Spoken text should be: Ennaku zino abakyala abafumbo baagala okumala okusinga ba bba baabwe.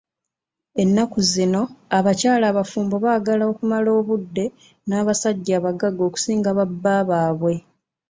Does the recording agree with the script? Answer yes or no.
no